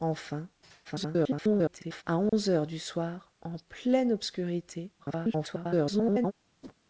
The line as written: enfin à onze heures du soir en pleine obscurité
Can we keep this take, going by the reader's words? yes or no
no